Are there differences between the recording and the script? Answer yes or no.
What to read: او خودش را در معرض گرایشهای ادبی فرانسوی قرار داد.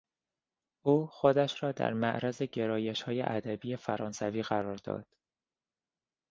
no